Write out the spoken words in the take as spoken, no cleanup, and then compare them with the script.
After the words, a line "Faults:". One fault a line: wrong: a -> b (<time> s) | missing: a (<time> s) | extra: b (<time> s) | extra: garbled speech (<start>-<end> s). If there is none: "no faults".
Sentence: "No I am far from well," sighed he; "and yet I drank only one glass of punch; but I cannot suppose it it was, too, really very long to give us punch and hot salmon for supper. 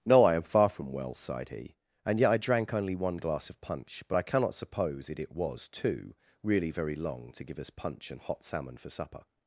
"No I am far from well," sighed he; "and yet I drank only one glass of punch; but I cannot suppose it it was, too, really very long to give us punch and hot salmon for supper.
Faults:
no faults